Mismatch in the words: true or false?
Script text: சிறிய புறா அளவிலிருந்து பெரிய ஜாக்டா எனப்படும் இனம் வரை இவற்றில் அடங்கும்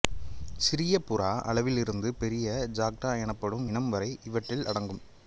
false